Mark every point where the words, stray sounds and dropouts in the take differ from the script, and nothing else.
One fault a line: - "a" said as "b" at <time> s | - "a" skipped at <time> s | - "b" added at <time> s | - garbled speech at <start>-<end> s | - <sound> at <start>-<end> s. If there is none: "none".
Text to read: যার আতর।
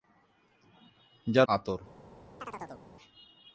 - chirp at 2.4-2.8 s